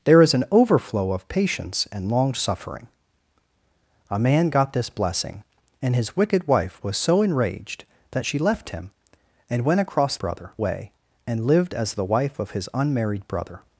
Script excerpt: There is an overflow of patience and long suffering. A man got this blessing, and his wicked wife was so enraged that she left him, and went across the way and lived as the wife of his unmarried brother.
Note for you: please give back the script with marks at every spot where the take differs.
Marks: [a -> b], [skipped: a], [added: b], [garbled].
There is an overflow of patience and long suffering. A man got this blessing, and his wicked wife was so enraged that she left him, and went across [the -> brother] way and lived as the wife of his unmarried brother.